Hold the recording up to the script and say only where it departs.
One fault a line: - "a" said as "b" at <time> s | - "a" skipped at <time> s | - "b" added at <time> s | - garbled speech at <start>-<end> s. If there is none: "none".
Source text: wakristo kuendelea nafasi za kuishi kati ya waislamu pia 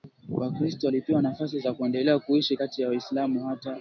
- "kuendelea" said as "walipewa" at 0.8 s
- "kuendelea" added at 1.7 s
- "pia" said as "hata" at 3.5 s